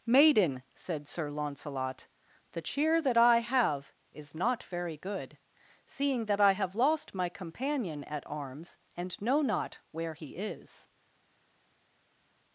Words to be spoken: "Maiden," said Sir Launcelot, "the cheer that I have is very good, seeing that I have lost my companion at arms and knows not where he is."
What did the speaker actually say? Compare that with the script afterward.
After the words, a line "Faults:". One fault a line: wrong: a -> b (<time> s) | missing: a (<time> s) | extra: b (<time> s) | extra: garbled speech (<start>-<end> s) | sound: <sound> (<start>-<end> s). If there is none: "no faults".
"Maiden," said Sir Launcelot, "the cheer that I have is not very good, seeing that I have lost my companion at arms and know not where he is."
Faults:
extra: not (4.3 s)
wrong: knows -> know (9.2 s)